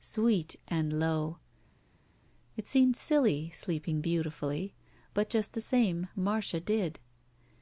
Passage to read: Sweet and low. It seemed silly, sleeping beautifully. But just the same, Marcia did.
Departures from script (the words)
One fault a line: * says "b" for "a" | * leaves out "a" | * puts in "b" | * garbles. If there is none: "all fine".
all fine